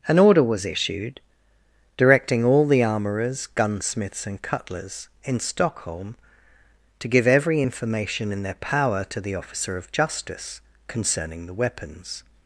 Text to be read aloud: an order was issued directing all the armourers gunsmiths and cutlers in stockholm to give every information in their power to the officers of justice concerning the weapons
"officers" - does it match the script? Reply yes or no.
no